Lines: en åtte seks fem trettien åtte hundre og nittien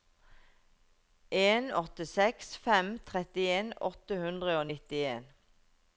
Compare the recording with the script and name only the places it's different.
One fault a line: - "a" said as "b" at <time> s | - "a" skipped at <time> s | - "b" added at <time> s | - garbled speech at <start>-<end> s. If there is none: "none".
none